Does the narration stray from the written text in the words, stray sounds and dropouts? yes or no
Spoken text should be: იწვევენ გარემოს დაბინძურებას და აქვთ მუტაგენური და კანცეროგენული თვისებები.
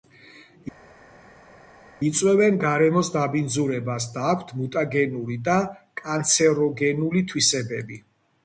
no